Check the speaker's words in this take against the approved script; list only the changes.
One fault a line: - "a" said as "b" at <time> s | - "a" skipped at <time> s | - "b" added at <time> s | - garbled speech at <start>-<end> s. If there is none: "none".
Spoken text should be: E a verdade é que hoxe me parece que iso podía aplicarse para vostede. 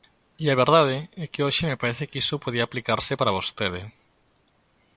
none